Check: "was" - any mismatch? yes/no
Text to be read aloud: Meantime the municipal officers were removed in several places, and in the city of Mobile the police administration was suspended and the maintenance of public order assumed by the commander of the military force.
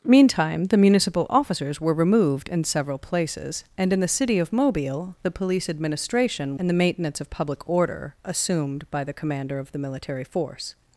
yes